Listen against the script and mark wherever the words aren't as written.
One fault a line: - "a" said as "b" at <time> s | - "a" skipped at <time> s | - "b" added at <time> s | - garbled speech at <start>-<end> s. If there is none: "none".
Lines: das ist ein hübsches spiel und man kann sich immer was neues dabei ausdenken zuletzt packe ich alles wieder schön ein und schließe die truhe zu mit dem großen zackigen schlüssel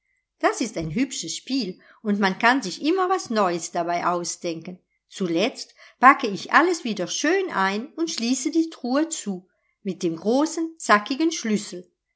none